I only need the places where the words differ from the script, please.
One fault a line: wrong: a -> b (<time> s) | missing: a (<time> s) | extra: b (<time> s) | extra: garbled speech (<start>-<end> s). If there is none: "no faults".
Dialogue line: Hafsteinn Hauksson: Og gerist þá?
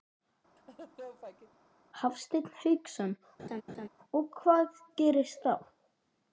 extra: hvað (4.4 s)